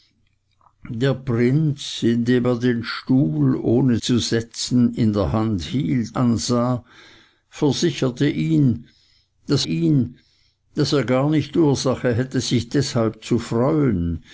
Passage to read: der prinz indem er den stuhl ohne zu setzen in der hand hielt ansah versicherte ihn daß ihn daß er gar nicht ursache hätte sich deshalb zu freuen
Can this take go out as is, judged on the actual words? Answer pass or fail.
pass